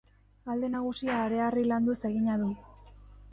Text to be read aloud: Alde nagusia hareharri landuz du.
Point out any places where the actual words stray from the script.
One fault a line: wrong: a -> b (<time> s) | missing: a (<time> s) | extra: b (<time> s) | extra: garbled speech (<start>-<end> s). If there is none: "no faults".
extra: egina (2.1 s)